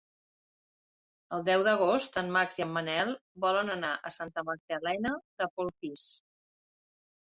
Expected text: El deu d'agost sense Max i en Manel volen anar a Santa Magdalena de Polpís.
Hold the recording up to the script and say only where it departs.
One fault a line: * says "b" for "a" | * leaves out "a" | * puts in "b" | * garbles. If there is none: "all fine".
* says "en" for "sense"